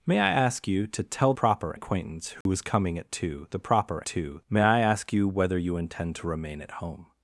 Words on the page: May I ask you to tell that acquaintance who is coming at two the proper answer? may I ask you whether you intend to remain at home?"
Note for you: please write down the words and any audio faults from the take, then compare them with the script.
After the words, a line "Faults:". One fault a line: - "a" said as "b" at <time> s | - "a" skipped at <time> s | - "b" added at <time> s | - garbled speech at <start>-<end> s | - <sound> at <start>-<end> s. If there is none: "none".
May I ask you to tell proper acquaintance who is coming at two the proper two? may I ask you whether you intend to remain at home?"
Faults:
- "that" said as "proper" at 1.3 s
- dropout at 2.4-2.5 s
- "answer" said as "two" at 4.0 s